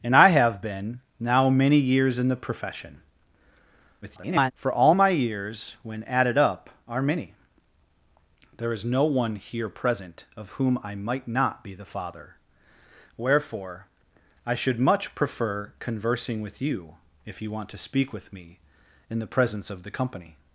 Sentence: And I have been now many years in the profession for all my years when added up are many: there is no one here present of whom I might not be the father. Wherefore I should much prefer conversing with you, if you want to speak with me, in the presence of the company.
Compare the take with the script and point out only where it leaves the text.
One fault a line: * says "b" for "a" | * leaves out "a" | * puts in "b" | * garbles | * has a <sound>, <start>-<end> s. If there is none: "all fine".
* garbles